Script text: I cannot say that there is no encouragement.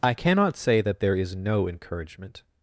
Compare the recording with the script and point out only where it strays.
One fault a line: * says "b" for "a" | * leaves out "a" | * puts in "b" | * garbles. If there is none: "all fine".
all fine